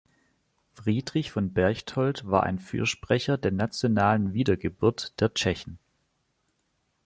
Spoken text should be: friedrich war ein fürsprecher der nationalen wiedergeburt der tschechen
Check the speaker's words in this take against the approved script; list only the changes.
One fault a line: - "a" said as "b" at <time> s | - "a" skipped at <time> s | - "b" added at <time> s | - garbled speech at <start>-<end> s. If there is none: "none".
- "von berchtold" added at 1.3 s